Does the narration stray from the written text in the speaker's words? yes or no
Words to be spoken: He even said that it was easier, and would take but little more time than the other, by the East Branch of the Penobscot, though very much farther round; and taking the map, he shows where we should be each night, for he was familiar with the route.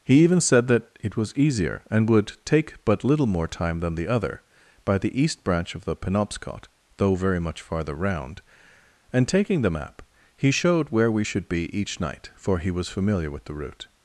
yes